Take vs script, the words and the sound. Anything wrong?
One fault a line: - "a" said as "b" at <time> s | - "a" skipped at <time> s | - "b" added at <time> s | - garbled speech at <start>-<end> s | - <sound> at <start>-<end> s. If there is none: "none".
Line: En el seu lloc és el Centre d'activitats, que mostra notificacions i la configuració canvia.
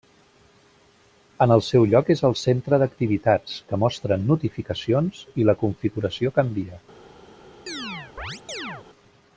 - chirp at 7.7-8.9 s